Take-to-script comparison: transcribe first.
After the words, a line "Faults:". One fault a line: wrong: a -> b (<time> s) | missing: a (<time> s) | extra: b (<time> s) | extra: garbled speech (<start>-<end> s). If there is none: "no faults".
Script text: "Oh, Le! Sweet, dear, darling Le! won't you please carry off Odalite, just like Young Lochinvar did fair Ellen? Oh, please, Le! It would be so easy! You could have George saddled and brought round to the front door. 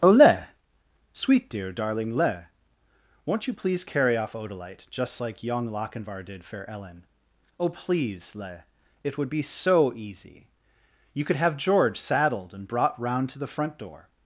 "Oh, Le! Sweet, dear, darling Le! won't you please carry off Odalite, just like Young Lochinvar did fair Ellen? Oh, please, Le! It would be so easy! You could have George saddled and brought round to the front door.
Faults:
no faults